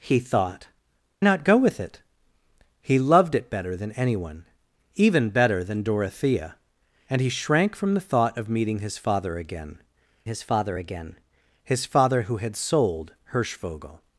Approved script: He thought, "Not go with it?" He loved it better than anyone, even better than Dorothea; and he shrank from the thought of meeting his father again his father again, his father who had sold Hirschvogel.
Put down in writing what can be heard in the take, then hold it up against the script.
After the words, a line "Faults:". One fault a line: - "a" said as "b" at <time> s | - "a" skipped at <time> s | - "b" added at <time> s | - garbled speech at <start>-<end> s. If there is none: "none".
He thought, "Not go with it?" He loved it better than anyone, even better than Dorothea; and he shrank from the thought of meeting his father again his father again, his father who had sold Hirschvogel.
Faults:
none